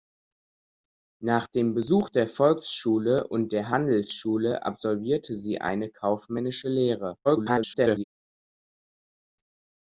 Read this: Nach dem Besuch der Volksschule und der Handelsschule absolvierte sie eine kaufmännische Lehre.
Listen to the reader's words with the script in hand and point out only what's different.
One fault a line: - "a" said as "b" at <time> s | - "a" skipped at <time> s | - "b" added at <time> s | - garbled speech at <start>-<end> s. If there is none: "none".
- garbled speech at 7.2-8.0 s